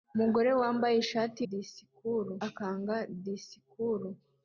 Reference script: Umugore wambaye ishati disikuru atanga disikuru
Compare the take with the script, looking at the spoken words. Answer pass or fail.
pass